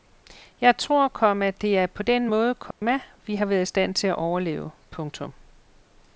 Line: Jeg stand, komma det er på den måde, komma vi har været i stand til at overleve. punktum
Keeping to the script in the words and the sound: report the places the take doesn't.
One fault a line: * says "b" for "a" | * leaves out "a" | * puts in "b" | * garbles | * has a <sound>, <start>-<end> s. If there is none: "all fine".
* says "tror" for "stand"
* has a dropout, 2.7-2.8 s